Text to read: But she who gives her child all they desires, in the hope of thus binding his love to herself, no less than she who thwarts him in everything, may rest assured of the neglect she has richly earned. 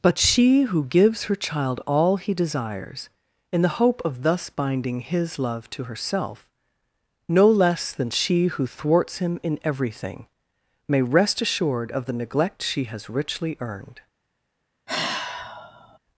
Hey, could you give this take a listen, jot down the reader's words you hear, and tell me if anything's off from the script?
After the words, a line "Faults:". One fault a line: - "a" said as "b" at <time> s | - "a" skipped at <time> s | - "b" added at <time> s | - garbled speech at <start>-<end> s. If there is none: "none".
But she who gives her child all he desires, in the hope of thus binding his love to herself, no less than she who thwarts him in everything, may rest assured of the neglect she has richly earned.
Faults:
- "they" said as "he" at 2.2 s